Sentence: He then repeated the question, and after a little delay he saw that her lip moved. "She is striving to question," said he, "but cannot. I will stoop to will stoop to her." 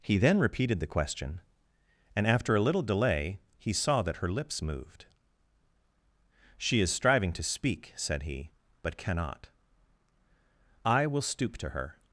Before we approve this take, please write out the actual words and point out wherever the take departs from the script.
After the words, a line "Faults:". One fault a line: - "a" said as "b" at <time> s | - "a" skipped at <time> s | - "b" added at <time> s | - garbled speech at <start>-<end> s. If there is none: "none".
He then repeated the question, and after a little delay he saw that her lips moved. "She is striving to speak," said he, "but cannot. I will stoop to her."
Faults:
- "lip" said as "lips" at 4.3 s
- "question" said as "speak" at 7.4 s
- "will stoop to" skipped at 11.7 s